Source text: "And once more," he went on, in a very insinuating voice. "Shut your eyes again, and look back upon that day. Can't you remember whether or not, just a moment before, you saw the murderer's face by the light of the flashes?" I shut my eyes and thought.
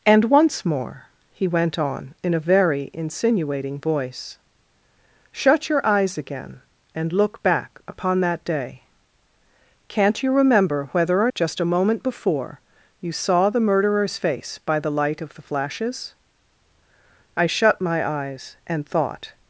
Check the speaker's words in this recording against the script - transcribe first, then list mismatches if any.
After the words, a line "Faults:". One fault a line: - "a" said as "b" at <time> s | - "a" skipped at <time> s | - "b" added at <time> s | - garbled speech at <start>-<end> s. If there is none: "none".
"And once more," he went on, in a very insinuating voice. "Shut your eyes again, and look back upon that day. Can't you remember whether or just a moment before, you saw the murderer's face by the light of the flashes?" I shut my eyes and thought.
Faults:
- "not" skipped at 11.3 s